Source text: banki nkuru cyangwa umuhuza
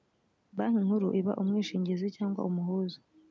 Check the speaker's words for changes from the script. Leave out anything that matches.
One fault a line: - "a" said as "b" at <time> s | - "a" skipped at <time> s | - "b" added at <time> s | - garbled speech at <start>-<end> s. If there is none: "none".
- "iba umwishingizi" added at 1.2 s